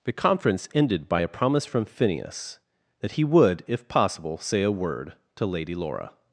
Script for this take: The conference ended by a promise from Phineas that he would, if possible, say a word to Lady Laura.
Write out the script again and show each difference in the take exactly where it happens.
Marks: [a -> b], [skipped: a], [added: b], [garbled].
The conference ended by a promise from Phineas that he would, if possible, say a word to Lady Laura.